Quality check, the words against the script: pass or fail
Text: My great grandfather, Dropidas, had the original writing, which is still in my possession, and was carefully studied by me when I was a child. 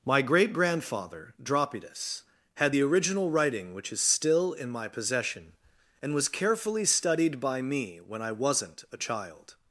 fail